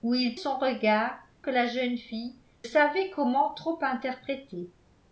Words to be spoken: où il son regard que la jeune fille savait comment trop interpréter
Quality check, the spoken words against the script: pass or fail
pass